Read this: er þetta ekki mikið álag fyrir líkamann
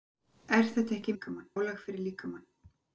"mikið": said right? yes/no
no